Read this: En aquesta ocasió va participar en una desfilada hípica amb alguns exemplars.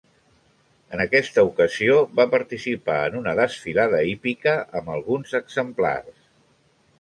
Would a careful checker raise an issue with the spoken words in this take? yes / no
no